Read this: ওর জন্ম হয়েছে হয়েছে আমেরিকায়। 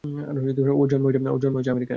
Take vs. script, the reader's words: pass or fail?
fail